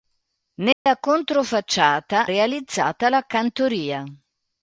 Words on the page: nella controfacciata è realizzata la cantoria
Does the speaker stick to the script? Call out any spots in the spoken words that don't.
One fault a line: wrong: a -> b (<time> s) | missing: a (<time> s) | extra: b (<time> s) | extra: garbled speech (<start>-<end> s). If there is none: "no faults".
missing: è (2.3 s)